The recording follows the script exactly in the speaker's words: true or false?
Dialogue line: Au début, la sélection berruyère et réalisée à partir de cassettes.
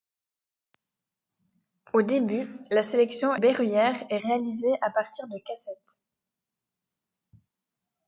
true